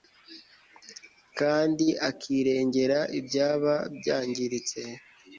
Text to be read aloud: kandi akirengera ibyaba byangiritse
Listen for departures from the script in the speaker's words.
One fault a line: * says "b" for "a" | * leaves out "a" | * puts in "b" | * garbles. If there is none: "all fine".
all fine